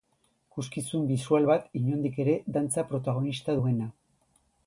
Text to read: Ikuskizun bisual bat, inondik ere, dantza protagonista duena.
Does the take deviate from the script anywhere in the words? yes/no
no